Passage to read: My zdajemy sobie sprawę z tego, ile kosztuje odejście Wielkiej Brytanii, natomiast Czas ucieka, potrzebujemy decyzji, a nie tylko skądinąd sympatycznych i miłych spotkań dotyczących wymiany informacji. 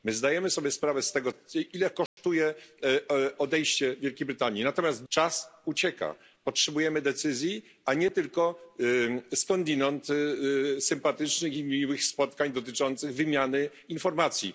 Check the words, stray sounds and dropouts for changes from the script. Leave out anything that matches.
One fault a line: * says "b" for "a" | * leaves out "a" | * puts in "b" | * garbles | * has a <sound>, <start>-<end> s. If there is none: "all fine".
* has a dropout, 2.1-2.2 s